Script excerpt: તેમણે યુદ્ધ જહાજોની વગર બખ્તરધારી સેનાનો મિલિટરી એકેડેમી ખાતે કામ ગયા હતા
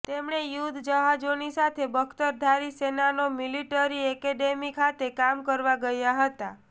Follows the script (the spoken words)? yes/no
no